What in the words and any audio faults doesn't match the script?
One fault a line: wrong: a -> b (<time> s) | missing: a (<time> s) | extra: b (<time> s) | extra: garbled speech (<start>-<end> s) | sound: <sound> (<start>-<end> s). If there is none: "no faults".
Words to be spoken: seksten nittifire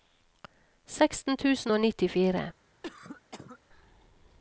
extra: tusen og (1.4 s)
sound: cough (2.8-3.6 s)